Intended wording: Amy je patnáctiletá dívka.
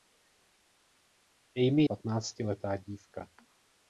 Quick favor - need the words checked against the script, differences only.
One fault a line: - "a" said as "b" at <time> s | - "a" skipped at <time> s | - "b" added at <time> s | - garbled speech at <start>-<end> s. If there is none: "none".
- "je" skipped at 1.8 s